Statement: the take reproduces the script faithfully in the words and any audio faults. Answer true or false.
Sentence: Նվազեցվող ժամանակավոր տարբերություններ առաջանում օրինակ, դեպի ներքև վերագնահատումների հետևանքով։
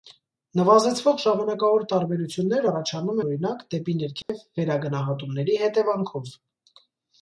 false